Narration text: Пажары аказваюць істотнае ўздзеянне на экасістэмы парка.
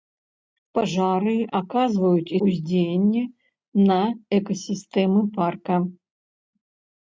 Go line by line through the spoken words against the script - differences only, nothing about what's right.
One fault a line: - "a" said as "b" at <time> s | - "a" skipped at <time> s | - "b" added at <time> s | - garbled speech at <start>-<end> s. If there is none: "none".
- "істотнае" skipped at 2.3 s